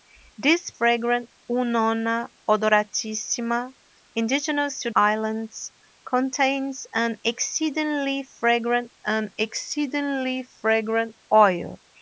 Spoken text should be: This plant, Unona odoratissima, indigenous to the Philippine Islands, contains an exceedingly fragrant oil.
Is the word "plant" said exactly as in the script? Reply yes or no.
no